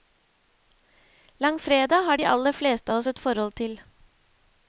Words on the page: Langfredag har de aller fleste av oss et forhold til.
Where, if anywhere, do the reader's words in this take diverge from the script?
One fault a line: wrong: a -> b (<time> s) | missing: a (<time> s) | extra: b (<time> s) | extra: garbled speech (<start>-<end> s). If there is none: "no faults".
no faults